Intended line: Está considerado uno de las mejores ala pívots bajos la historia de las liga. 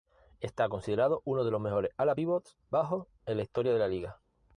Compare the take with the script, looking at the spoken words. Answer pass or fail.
fail